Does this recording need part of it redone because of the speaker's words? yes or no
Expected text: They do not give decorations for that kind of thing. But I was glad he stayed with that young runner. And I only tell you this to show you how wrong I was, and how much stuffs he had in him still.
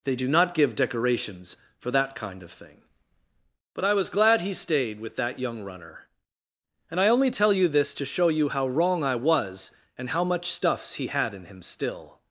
no